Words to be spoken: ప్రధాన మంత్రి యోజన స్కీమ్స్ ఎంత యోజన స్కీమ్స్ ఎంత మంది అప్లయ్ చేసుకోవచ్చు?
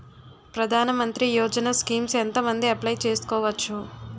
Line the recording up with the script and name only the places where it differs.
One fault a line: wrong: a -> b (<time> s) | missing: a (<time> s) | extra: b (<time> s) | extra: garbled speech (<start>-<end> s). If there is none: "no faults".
missing: యోజన స్కీమ్స్ ఎంత (2.4 s)